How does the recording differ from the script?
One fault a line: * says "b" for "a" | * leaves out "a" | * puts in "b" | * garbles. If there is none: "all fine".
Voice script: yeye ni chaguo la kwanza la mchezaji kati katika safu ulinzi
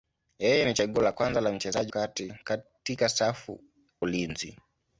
all fine